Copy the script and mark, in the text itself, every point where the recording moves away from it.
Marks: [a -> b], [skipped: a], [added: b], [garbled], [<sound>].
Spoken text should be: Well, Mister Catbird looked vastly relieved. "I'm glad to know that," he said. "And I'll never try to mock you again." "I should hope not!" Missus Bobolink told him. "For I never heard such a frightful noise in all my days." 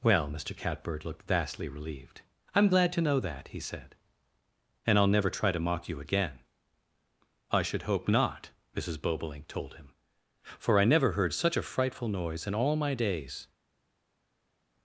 Well, Mister Catbird looked vastly relieved. "I'm glad to know that," he said. "And I'll never try to mock you again." "I should hope not!" Missus Bobolink told him. "For I never heard such a frightful noise in all my days."